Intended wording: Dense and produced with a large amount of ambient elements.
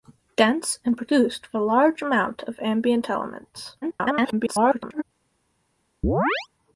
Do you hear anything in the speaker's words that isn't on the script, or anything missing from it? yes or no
yes